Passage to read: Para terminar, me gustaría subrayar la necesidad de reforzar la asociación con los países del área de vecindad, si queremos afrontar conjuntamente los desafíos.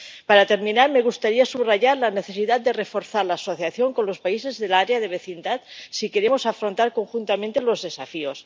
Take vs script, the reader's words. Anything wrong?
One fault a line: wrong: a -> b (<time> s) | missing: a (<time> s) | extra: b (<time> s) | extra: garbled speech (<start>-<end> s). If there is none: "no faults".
no faults